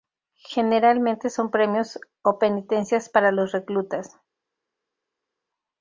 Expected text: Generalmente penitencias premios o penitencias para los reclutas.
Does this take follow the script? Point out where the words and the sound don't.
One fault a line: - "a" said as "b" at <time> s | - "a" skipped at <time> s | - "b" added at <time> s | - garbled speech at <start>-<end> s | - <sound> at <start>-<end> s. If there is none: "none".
- "penitencias" said as "son" at 1.3 s